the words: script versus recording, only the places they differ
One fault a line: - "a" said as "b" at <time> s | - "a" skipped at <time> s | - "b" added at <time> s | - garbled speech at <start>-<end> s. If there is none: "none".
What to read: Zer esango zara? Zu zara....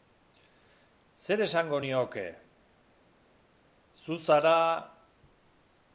- "zara" said as "nioke" at 1.8 s